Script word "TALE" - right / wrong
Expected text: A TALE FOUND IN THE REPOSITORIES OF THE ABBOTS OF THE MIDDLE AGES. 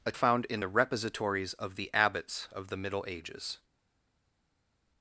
wrong